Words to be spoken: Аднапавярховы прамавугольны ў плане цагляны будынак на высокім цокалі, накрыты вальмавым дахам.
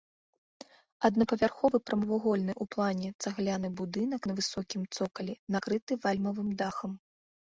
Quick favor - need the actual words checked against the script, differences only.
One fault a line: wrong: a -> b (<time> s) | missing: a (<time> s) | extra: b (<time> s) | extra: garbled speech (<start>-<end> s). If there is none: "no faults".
no faults